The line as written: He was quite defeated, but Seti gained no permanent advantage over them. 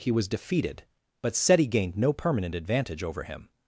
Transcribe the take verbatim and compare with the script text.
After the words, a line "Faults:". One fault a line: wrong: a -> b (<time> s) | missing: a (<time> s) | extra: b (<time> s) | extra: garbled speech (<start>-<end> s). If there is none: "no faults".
He was defeated, but Seti gained no permanent advantage over him.
Faults:
missing: quite (0.3 s)
wrong: them -> him (3.2 s)